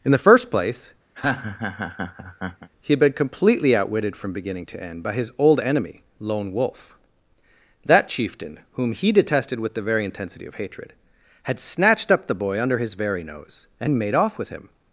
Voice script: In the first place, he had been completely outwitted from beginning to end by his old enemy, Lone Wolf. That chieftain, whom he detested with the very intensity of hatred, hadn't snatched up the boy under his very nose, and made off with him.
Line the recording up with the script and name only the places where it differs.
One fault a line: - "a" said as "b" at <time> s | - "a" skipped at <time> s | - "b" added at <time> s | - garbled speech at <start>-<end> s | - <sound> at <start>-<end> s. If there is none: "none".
- laugh at 1.1-2.7 s
- "hadn't" said as "had" at 11.4 s